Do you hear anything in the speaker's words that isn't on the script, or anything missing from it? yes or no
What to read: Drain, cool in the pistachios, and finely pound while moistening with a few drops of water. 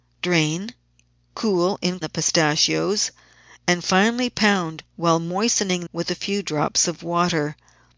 no